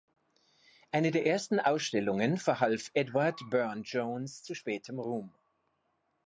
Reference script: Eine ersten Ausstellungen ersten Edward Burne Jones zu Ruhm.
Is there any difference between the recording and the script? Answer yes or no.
yes